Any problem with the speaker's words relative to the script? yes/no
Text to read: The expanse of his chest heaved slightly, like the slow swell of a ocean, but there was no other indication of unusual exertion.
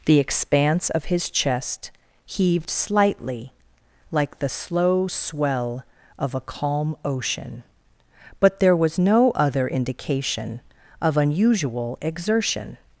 yes